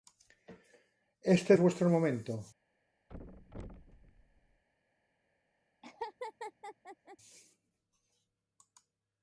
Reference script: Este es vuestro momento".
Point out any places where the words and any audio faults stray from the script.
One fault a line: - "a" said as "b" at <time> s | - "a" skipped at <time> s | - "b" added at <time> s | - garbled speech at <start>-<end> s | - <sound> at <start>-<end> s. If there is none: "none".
- thud at 3.1-4.6 s
- laugh at 5.8-7.2 s